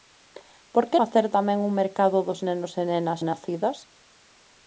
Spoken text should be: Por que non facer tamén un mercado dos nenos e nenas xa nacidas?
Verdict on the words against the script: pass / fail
fail